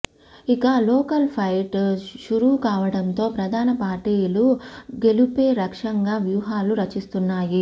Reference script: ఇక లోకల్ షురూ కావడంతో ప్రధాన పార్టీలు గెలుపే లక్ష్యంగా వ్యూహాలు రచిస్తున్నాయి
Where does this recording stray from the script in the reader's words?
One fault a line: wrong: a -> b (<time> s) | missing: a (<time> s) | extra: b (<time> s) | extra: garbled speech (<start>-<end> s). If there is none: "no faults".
extra: ఫైట్ (1.3 s)